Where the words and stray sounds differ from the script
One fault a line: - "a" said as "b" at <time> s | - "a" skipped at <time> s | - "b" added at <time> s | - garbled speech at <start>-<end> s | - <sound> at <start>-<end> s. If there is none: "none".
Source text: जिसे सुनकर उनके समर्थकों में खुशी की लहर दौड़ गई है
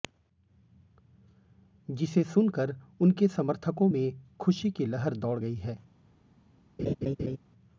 - laugh at 6.8-7.4 s